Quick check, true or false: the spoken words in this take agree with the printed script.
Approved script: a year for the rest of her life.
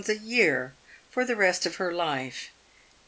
true